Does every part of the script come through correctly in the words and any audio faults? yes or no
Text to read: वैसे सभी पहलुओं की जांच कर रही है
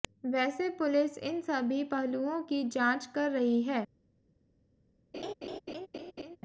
no